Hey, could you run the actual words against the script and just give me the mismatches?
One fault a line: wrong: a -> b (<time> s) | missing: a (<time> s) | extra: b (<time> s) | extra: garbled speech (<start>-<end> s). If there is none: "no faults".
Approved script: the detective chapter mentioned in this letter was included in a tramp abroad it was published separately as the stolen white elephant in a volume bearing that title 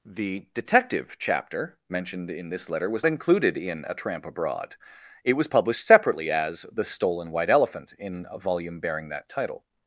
no faults